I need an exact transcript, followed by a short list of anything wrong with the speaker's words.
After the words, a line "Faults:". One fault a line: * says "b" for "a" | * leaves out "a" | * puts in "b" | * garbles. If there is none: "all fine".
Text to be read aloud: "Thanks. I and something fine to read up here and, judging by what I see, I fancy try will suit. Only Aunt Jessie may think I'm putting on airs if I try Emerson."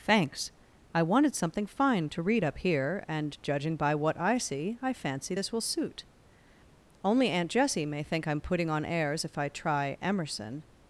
"Thanks. I wanted something fine to read up here and, judging by what I see, I fancy this will suit. Only Aunt Jessie may think I'm putting on airs if I try Emerson."
Faults:
* says "wanted" for "and"
* says "this" for "try"